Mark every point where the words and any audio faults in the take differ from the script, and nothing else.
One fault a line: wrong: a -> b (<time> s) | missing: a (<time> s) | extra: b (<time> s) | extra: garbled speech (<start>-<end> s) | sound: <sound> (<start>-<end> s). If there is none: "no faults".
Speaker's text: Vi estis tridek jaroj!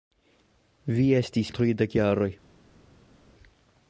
no faults